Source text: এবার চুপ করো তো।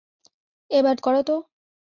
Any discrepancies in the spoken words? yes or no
yes